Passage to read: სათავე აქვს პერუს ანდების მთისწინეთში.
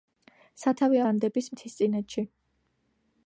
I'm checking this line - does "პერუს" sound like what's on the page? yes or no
no